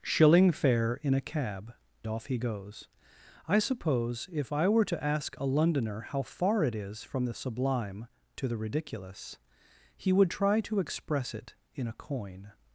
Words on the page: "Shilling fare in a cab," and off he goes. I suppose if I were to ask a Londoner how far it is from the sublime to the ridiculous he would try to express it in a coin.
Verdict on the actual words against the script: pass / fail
fail